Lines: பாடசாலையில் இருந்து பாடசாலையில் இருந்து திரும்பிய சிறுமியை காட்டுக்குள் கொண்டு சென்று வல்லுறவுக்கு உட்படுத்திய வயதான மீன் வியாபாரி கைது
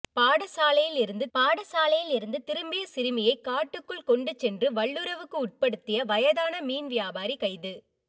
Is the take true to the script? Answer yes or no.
yes